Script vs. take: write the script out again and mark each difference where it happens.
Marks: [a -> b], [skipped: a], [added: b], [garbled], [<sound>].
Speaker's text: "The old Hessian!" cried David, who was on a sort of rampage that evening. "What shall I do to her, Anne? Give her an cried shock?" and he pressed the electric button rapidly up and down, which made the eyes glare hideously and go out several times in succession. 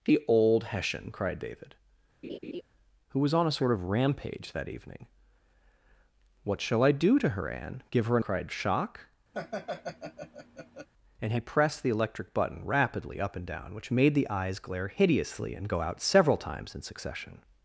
"The old Hessian!" cried David, [laugh] who was on a sort of rampage that evening. "What shall I do to her, Anne? Give her an cried shock?" [laugh] and he pressed the electric button rapidly up and down, which made the eyes glare hideously and go out several times in succession.